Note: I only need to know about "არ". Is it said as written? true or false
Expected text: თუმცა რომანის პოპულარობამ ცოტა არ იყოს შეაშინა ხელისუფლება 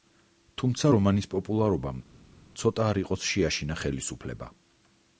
true